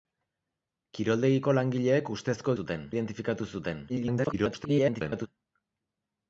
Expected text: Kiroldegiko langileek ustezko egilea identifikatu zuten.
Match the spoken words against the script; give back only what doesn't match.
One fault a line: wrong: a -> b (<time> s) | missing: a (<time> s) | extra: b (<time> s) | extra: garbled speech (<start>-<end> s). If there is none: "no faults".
wrong: egilea -> zuten (2.6 s)
extra: garbled speech (3.9-5.3 s)